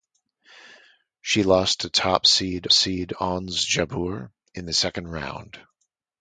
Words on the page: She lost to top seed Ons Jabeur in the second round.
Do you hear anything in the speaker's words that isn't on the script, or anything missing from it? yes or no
yes